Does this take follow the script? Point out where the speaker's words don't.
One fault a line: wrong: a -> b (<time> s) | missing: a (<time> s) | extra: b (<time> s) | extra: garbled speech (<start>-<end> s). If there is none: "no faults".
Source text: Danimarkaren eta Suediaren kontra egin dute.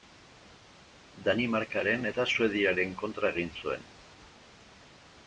wrong: dute -> zuen (3.6 s)